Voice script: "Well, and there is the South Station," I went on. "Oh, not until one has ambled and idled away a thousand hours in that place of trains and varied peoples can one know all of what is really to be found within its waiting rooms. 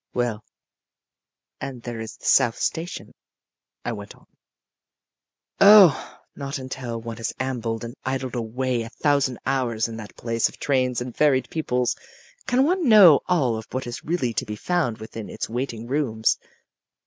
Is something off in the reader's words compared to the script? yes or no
no